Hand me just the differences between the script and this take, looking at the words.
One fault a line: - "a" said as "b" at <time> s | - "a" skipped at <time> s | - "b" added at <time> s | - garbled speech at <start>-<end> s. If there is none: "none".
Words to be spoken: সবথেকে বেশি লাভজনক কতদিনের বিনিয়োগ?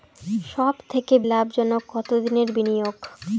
- "বেশি" skipped at 1.1 s